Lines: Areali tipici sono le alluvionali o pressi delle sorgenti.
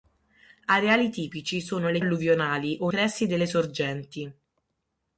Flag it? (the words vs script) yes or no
no